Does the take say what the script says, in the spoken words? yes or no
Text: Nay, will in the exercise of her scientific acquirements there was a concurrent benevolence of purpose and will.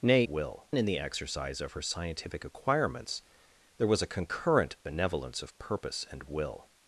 yes